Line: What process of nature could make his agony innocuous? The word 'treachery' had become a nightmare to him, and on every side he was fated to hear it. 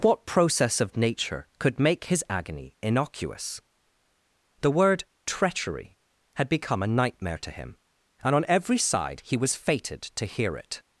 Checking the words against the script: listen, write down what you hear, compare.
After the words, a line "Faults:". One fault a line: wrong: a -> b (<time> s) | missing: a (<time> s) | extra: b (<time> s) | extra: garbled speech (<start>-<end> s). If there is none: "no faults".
What process of nature could make his agony innocuous? The word 'treachery' had become a nightmare to him, and on every side he was fated to hear it.
Faults:
no faults